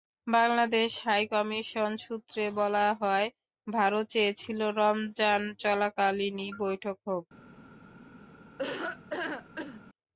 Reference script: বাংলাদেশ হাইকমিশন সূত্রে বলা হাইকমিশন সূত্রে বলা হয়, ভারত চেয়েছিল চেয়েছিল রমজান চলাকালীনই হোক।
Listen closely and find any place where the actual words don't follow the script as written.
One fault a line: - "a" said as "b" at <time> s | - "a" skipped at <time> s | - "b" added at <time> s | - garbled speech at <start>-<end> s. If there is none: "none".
- "হাইকমিশন সূত্রে বলা" skipped at 2.9 s
- "চেয়েছিল" skipped at 4.6 s
- "বৈঠক" added at 6.6 s